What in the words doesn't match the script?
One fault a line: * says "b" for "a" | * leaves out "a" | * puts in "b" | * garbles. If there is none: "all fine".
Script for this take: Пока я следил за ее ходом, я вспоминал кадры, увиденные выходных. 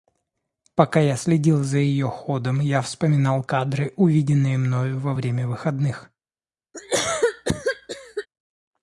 * puts in "мною во время"